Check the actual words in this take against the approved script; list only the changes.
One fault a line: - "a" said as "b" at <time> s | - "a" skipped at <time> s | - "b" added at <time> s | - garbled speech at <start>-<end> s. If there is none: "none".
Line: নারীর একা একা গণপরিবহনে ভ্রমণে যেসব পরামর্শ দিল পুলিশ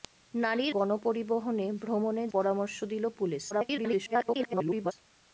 - "একা একা" skipped at 0.7 s
- "যেসব" skipped at 2.2 s
- garbled speech at 3.5-4.9 s